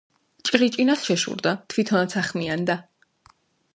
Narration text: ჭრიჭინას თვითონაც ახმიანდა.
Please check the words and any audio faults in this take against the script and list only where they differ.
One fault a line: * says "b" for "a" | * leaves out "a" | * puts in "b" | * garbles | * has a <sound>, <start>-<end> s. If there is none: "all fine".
* puts in "შეშურდა"